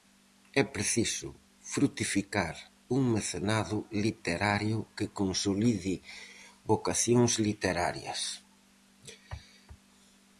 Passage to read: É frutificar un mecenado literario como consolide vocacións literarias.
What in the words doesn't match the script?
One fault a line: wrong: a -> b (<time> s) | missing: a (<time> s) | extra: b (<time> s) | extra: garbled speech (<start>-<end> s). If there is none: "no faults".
extra: preciso (0.8 s)
wrong: como -> que (5.0 s)